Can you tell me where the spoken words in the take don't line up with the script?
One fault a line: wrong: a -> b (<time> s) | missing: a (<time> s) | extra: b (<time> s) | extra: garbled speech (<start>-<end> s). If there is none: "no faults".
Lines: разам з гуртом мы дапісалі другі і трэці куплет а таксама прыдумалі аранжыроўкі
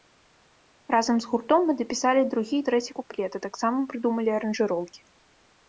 no faults